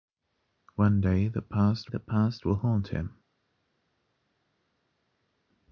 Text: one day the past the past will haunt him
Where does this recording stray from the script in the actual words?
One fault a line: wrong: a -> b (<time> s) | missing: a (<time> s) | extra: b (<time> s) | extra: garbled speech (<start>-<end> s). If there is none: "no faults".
no faults